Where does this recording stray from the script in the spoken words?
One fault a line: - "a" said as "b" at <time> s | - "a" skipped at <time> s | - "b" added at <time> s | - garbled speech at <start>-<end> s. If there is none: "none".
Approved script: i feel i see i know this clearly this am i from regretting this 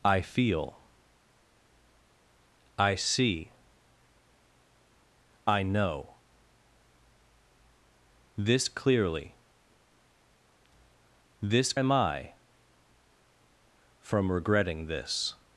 none